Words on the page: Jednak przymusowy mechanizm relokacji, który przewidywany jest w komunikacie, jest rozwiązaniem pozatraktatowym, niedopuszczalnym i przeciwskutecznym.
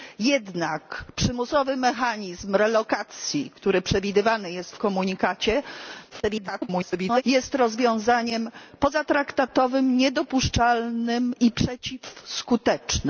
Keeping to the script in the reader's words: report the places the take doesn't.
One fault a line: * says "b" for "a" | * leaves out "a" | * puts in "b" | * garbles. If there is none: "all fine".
* garbles